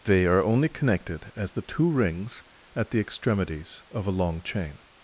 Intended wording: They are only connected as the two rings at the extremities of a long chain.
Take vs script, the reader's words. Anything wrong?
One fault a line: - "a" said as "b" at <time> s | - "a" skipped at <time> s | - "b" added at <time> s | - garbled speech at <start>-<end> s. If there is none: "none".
none